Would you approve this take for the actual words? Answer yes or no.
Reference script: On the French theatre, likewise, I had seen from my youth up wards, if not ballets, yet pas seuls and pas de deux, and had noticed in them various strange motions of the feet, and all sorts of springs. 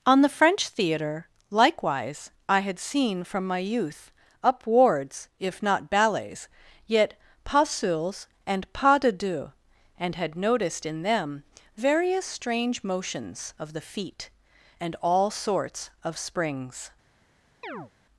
yes